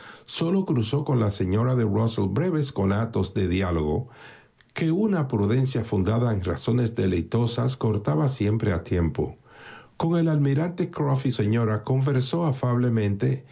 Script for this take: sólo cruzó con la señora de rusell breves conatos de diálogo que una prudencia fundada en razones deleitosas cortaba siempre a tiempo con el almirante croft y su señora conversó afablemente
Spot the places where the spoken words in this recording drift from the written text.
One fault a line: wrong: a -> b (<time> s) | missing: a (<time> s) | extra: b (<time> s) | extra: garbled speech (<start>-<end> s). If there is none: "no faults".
missing: su (11.3 s)